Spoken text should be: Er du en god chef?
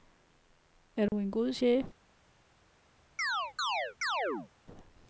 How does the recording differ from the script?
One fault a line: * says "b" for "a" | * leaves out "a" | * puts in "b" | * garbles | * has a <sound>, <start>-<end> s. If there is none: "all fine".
* has a dropout, 1.1-1.1 s
* has a chirp, 3.2-4.5 s